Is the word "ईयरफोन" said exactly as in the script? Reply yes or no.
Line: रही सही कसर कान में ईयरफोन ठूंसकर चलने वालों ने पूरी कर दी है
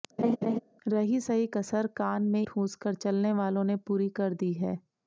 no